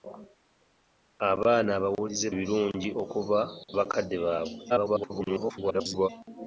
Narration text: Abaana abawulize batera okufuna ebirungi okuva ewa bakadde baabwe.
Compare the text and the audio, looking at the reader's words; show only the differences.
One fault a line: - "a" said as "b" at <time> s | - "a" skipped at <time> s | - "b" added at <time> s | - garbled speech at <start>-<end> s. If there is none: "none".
- "batera okufuna" skipped at 2.3 s
- "ewa" skipped at 3.4 s
- garbled speech at 4.7-6.1 s